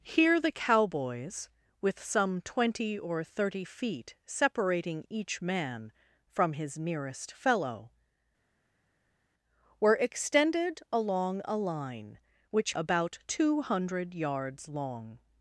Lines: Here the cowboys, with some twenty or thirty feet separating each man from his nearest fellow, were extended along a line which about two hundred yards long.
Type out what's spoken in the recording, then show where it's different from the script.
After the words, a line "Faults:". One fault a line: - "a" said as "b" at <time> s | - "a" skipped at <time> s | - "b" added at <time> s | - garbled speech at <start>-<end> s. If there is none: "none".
Here the cowboys, with some twenty or thirty feet separating each man from his nearest fellow, were extended along a line which about two hundred yards long.
Faults:
none